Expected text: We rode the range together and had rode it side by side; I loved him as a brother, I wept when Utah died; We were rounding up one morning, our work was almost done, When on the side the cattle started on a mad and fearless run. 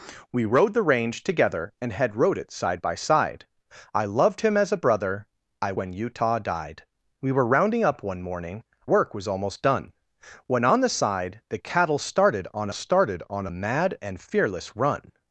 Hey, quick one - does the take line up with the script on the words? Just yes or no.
no